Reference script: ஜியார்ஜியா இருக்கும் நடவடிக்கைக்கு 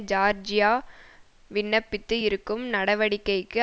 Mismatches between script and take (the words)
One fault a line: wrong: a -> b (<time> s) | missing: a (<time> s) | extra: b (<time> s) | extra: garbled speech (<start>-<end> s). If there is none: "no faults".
extra: விண்ணப்பித்து (1.5 s)